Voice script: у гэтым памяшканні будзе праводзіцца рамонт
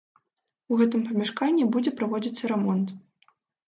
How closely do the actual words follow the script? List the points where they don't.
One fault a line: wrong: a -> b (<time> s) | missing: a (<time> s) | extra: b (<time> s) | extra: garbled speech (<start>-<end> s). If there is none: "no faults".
no faults